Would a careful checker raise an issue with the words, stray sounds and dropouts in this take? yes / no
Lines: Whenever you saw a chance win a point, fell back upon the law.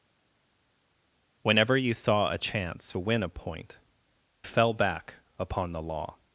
no